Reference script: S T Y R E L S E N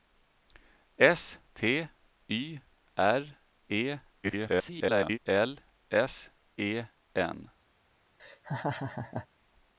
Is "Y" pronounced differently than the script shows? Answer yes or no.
no